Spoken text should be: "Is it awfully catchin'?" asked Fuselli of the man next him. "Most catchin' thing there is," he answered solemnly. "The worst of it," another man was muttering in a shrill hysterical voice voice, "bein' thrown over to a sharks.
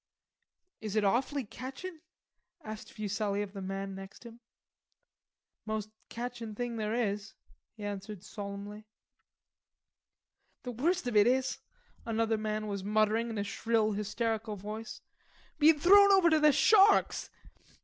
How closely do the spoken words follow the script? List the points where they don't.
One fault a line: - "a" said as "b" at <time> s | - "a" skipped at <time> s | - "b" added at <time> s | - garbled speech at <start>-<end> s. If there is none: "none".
- "is" added at 11.3 s
- "voice" skipped at 15.0 s
- "a" said as "the" at 16.4 s